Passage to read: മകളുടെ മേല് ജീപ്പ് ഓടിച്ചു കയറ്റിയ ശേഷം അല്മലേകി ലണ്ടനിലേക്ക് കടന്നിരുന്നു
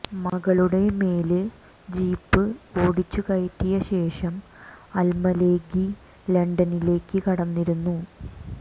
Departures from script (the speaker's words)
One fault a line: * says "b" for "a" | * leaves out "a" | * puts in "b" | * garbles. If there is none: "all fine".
all fine